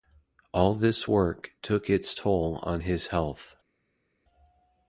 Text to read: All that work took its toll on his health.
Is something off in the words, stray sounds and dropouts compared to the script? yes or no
yes